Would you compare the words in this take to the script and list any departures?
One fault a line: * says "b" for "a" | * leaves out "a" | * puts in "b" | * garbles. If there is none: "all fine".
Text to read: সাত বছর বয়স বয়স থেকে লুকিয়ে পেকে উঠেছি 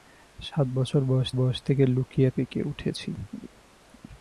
all fine